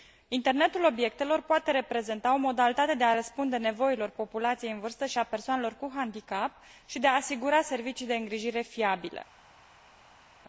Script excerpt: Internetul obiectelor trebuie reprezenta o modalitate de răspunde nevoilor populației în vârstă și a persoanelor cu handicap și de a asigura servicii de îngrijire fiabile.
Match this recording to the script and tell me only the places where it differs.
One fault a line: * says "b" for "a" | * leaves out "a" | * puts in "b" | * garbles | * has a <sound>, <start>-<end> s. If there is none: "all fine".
* says "poate" for "trebuie"
* puts in "a"